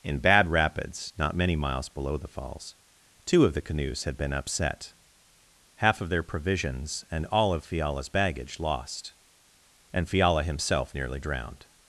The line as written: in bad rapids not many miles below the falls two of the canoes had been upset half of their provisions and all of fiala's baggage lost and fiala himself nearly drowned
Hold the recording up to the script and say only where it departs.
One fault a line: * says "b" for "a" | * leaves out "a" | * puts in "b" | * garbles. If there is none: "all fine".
all fine